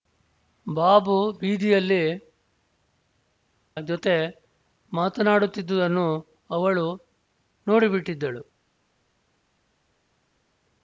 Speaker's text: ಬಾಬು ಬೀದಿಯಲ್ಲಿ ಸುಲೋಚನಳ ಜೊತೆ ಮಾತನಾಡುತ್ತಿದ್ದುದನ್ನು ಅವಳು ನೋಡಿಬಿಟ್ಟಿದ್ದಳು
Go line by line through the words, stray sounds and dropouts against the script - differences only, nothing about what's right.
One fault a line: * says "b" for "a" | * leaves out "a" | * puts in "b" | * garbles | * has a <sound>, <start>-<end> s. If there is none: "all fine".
* leaves out "ಸುಲೋಚನಳ"